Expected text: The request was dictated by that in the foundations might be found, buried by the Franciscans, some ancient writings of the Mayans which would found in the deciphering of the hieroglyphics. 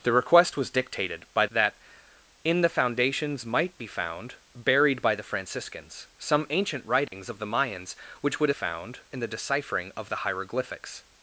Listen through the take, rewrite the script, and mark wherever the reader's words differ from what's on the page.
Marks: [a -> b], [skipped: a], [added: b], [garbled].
The request was dictated by that in the foundations might be found, buried by the Franciscans, some ancient writings of the Mayans which would found in the deciphering of the hieroglyphics.